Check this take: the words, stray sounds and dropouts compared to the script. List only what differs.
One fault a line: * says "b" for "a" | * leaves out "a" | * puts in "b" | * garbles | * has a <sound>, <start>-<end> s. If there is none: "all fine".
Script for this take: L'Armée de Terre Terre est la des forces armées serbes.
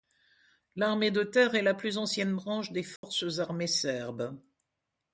* leaves out "Terre"
* puts in "plus ancienne branche"
* has a dropout, 3.0-3.0 s